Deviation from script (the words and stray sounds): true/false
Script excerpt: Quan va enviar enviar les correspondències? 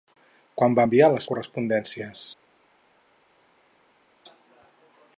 true